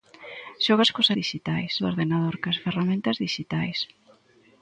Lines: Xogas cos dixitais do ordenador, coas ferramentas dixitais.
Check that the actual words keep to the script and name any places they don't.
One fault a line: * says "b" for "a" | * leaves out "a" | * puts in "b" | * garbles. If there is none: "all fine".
all fine